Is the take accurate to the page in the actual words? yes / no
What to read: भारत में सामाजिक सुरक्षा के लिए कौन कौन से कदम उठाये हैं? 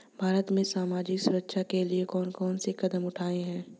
yes